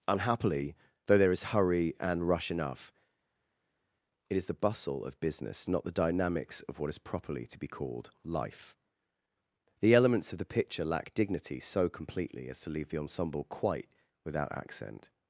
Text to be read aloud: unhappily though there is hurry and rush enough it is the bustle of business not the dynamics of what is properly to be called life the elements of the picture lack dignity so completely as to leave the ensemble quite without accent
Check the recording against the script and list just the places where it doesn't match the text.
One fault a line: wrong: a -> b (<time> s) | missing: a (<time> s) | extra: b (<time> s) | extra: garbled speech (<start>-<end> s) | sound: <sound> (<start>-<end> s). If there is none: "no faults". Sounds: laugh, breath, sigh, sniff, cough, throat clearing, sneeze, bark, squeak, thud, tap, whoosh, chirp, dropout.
no faults